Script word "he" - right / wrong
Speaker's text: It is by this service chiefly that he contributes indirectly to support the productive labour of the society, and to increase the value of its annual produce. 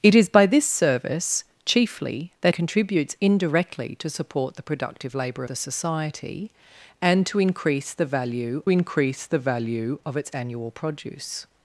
wrong